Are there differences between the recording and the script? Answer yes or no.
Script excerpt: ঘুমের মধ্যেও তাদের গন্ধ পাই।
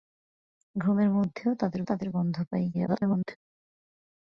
yes